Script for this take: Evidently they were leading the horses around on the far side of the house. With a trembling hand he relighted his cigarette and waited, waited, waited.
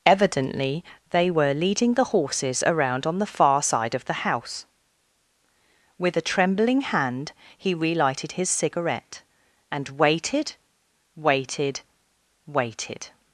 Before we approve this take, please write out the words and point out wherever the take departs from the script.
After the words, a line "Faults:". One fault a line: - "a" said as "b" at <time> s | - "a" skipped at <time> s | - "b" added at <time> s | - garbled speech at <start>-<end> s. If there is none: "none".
Evidently they were leading the horses around on the far side of the house. With a trembling hand he relighted his cigarette and waited, waited, waited.
Faults:
none